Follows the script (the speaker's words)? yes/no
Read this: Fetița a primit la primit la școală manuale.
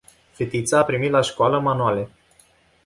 no